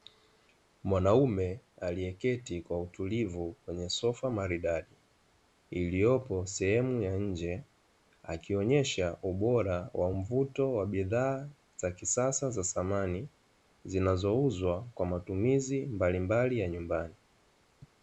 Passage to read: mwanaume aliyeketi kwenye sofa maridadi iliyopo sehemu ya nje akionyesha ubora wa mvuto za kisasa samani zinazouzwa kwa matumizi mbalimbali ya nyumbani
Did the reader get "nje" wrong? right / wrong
right